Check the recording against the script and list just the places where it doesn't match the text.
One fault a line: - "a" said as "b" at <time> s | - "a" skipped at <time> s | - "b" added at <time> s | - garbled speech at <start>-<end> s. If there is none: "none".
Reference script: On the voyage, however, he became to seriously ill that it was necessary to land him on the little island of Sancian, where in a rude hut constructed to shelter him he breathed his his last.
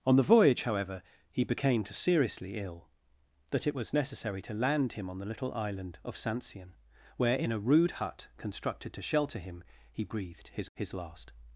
none